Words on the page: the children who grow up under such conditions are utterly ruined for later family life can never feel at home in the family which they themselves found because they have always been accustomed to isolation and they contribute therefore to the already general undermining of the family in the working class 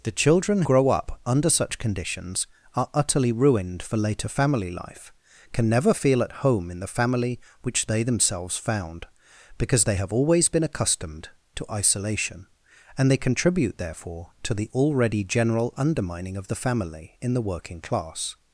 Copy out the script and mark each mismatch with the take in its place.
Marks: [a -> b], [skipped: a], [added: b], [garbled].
the children [skipped: who] grow up under such conditions are utterly ruined for later family life can never feel at home in the family which they themselves found because they have always been accustomed to isolation and they contribute therefore to the already general undermining of the family in the working class